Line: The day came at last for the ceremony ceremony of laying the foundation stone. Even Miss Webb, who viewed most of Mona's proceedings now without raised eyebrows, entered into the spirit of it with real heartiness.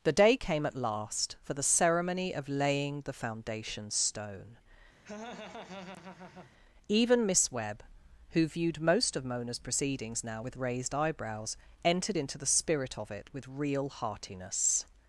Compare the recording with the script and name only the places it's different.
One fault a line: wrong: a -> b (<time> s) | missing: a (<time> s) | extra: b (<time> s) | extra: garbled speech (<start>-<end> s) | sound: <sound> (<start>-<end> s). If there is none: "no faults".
missing: ceremony (2.3 s)
sound: laugh (5.0-6.5 s)
wrong: without -> with (10.4 s)